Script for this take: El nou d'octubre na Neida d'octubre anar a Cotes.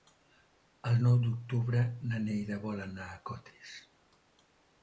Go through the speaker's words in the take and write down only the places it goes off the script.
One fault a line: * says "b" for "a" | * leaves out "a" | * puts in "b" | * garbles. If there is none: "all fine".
* says "vol" for "d'octubre"